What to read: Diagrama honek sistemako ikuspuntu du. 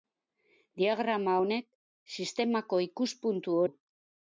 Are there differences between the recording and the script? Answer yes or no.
no